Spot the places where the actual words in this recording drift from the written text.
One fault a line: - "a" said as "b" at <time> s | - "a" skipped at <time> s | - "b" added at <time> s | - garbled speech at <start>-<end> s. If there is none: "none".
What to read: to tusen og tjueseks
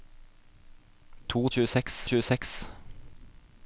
- "tusen" said as "tjueseks" at 1.5 s